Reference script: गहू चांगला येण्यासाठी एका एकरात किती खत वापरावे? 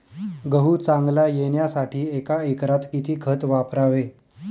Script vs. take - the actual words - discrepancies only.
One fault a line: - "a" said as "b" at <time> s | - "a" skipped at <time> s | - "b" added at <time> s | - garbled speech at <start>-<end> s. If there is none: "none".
none